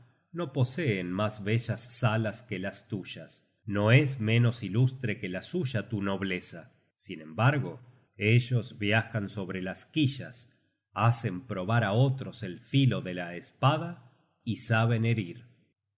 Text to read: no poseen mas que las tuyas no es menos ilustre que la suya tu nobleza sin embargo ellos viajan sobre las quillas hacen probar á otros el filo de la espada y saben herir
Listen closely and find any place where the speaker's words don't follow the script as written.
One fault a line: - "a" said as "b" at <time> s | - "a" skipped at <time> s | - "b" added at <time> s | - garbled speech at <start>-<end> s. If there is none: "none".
- "bellas salas" added at 1.4 s